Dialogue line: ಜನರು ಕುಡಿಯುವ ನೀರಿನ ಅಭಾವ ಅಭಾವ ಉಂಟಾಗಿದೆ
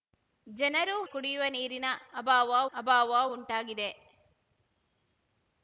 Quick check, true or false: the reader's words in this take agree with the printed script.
true